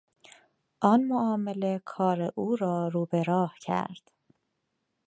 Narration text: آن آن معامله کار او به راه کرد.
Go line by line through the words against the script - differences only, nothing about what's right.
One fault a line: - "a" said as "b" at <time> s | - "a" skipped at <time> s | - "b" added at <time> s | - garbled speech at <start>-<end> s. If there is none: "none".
- "آن" skipped at 1.0 s
- "را رو" added at 2.5 s